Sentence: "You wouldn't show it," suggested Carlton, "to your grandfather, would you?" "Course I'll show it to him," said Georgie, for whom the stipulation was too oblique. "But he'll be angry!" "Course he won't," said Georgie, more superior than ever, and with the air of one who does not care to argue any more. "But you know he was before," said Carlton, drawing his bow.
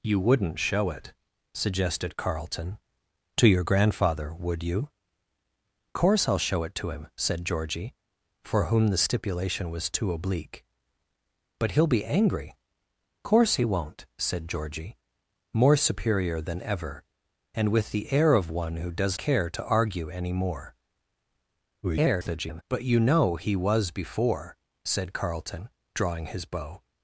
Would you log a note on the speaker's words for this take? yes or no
yes